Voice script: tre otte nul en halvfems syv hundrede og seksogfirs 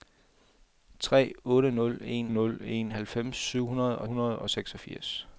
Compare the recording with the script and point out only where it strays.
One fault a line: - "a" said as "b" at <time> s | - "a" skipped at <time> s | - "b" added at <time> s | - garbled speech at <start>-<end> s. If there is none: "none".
- "nul en" added at 2.3 s
- "hundrede og" added at 4.1 s